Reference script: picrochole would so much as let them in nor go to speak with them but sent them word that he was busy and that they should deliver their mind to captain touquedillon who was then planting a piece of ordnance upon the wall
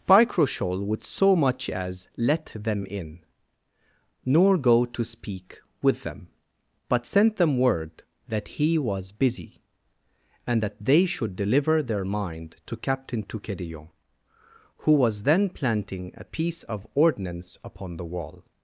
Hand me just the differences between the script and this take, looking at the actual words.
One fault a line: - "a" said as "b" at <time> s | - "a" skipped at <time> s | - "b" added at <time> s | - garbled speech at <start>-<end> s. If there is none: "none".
none